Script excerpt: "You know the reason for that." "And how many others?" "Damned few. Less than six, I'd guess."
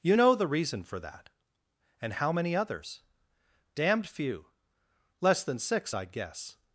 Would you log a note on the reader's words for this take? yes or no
no